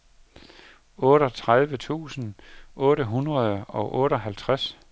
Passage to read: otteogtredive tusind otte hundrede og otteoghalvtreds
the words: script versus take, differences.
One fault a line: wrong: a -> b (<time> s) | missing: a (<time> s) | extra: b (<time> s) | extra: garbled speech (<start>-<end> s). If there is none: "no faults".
no faults